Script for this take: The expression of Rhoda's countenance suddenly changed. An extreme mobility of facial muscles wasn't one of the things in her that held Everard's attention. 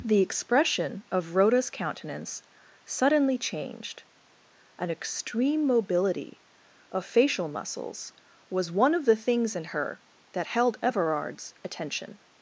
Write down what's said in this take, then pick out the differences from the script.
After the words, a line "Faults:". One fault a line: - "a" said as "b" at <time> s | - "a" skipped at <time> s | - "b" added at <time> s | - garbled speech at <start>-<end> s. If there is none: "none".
The expression of Rhoda's countenance suddenly changed. An extreme mobility of facial muscles was one of the things in her that held Everard's attention.
Faults:
- "wasn't" said as "was" at 8.5 s